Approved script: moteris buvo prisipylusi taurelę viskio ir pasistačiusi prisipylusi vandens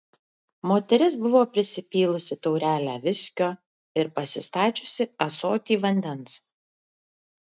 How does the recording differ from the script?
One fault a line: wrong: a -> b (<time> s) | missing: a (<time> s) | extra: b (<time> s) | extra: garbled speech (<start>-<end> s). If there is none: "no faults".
wrong: prisipylusi -> ąsotį (5.3 s)